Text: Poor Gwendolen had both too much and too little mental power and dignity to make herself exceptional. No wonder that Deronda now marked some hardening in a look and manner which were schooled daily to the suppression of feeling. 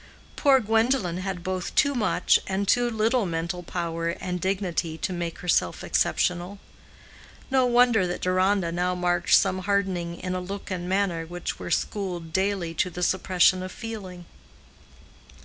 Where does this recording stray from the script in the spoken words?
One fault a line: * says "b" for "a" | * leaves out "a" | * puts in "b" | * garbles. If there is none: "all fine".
all fine